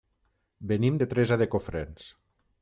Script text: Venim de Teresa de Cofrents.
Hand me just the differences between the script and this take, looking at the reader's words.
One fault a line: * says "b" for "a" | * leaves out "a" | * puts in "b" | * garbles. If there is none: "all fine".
all fine